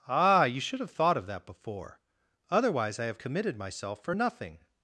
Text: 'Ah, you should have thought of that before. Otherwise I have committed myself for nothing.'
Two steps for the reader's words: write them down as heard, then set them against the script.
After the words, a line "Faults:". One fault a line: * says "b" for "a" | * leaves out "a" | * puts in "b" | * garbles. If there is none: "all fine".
'Ah, you should have thought of that before. Otherwise I have committed myself for nothing.'
Faults:
all fine